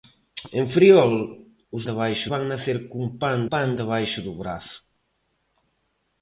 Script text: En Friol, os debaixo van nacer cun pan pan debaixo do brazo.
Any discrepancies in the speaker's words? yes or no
no